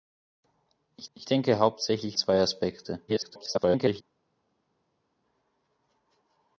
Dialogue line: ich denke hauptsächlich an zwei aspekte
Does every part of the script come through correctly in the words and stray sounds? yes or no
no